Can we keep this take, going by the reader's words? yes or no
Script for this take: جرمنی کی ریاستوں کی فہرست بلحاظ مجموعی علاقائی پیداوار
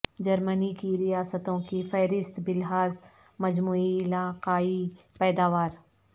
yes